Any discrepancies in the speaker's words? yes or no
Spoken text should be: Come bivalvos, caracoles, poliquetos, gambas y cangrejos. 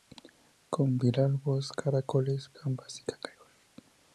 yes